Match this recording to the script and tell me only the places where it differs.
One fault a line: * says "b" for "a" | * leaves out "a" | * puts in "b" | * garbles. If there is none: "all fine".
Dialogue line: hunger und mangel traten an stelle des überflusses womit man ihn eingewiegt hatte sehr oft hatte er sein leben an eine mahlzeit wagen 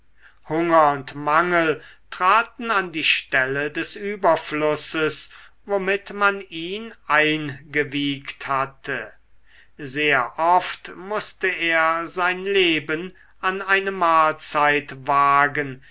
* puts in "die"
* says "mußte" for "hatte"